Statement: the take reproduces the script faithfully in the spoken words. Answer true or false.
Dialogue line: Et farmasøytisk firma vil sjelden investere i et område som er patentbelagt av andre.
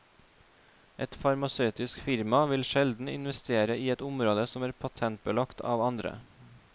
true